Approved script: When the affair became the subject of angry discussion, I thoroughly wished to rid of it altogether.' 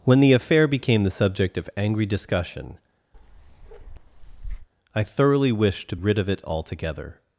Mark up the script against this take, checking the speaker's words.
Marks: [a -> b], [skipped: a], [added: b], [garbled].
When the affair became the subject of angry discussion, I thoroughly wished to rid of it altogether.'